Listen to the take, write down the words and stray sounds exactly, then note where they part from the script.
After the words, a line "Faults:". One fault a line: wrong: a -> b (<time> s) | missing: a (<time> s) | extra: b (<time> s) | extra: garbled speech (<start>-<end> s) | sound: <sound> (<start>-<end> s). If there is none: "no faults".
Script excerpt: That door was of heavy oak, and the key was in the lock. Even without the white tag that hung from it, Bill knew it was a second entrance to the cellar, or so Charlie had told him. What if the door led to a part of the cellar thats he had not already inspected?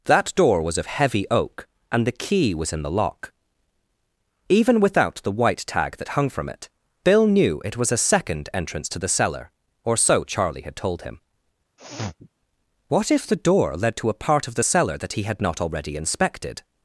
That door was of heavy oak, and the key was in the lock. Even without the white tag that hung from it, Bill knew it was a second entrance to the cellar, or so Charlie had told him. What if the door led to a part of the cellar that he had not already inspected?
Faults:
sound: sniff (11.8-12.3 s)
wrong: thats -> that (15.0 s)